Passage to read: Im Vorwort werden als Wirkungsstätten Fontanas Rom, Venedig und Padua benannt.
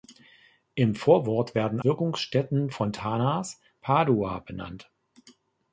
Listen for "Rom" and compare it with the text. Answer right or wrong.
wrong